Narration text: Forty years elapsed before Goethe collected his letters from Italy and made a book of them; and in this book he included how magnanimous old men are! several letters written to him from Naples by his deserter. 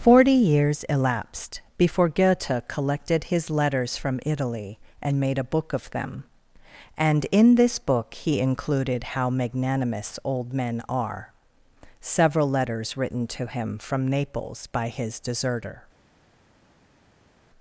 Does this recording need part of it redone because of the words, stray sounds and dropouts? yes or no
no